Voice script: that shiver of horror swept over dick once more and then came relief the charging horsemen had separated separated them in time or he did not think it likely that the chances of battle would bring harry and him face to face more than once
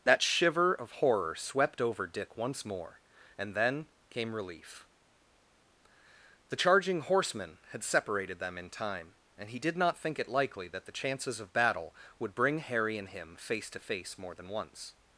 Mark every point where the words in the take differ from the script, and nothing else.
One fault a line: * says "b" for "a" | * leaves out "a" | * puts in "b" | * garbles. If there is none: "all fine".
* leaves out "separated"
* says "and" for "or"